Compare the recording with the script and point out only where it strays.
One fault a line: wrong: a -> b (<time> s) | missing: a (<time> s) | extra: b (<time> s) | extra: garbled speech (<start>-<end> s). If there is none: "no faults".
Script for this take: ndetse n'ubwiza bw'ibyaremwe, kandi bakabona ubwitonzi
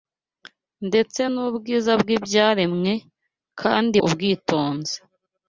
missing: bakabona (4.0 s)